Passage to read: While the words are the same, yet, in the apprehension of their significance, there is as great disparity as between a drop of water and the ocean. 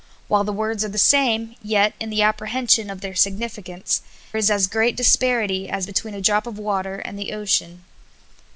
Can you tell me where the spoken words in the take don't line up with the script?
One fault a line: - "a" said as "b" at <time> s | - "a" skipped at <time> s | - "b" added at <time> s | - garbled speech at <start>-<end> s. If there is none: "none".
- "there" skipped at 4.0 s